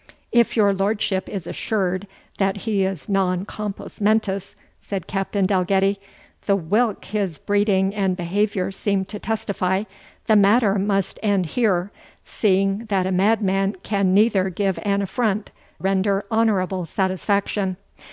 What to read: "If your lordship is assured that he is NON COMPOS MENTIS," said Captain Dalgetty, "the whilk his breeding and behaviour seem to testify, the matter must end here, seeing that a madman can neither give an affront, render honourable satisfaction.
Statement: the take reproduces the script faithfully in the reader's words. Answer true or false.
true